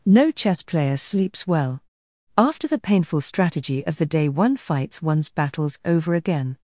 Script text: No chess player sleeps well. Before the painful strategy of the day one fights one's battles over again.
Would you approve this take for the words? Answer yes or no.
no